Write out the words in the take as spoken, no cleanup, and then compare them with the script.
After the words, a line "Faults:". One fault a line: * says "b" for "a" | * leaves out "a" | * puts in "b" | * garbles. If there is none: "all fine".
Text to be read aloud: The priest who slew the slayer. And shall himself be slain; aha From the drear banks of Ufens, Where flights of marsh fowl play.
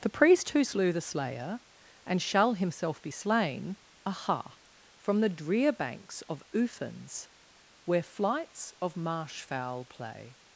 The priest who slew the slayer. And shall himself be slain; aha From the drear banks of Ufens, Where flights of marsh fowl play.
Faults:
all fine